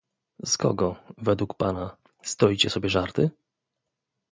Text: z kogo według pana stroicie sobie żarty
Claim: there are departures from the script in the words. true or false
false